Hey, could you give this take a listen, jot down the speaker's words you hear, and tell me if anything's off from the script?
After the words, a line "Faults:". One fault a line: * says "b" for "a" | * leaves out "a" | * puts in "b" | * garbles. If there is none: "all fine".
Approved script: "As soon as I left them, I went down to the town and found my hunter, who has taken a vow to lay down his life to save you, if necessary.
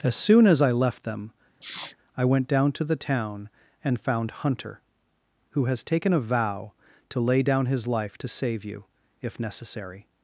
"As soon as I left them, I went down to the town and found hunter, who has taken a vow to lay down his life to save you, if necessary.
Faults:
* leaves out "my"